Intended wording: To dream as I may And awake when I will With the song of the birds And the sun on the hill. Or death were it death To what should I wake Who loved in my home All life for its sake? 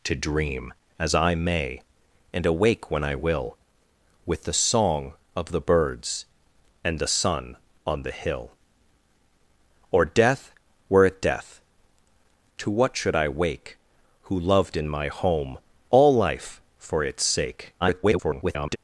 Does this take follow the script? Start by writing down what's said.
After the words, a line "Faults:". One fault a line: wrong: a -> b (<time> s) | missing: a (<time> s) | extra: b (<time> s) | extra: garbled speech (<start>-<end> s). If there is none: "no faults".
To dream as I may And awake when I will With the song of the birds And the sun on the hill. Or death were it death To what should I wake Who loved in my home All life for its sake? [garbled]
Faults:
extra: garbled speech (17.8-18.8 s)